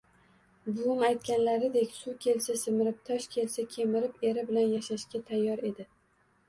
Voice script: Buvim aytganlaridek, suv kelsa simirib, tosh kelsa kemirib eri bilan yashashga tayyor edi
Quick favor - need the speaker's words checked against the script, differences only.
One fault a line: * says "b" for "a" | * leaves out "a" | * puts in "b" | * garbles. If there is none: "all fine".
all fine